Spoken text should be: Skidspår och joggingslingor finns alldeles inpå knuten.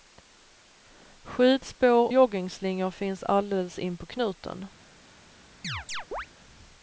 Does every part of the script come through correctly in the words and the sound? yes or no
no